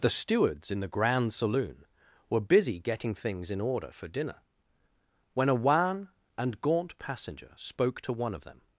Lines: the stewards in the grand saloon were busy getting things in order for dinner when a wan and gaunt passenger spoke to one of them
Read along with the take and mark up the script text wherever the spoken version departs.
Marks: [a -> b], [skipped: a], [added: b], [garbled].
the stewards in the grand saloon were busy getting things in order for dinner when a wan and gaunt passenger spoke to one of them